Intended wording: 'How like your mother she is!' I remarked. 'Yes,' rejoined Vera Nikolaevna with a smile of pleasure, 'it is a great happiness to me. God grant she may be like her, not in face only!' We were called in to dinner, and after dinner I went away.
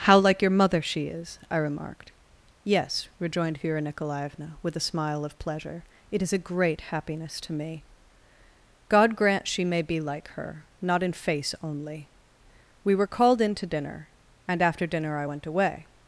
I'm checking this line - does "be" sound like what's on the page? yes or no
yes